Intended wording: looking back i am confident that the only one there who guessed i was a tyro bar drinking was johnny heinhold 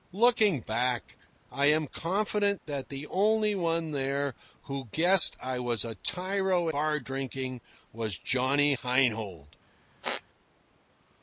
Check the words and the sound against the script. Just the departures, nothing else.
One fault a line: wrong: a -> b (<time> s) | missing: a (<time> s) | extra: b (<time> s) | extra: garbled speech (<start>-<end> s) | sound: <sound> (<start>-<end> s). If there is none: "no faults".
sound: squeak (10.0-10.2 s)